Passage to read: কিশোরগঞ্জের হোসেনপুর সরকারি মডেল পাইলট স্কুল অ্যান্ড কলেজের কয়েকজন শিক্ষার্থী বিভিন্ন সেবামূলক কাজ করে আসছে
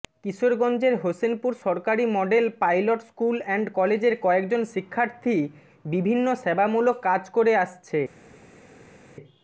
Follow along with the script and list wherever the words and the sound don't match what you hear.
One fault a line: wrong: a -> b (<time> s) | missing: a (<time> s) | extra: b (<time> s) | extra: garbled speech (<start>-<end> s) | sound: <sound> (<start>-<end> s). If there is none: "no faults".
no faults